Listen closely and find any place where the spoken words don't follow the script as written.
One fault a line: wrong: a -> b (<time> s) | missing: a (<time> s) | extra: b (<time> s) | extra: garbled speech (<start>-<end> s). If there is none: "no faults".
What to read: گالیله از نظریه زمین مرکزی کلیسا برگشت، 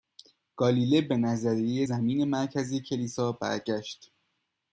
wrong: از -> به (1.0 s)